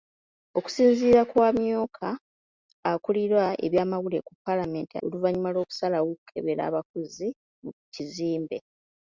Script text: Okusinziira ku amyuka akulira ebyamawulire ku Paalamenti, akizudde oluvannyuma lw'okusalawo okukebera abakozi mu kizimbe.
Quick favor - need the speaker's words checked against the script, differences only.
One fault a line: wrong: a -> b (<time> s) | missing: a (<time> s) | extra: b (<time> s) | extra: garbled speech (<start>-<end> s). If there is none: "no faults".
missing: akizudde (5.0 s)